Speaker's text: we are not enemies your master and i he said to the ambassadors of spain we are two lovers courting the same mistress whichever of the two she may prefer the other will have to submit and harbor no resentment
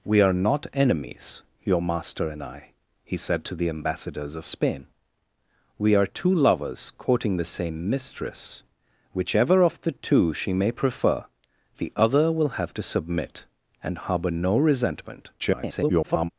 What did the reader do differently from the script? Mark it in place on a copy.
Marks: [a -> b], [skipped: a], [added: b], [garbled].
we are not enemies your master and i he said to the ambassadors of spain we are two lovers courting the same mistress whichever of the two she may prefer the other will have to submit and harbor no resentment [garbled]